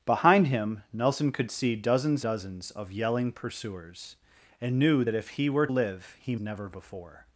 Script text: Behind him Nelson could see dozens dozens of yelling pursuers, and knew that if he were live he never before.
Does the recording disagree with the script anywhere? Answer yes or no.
no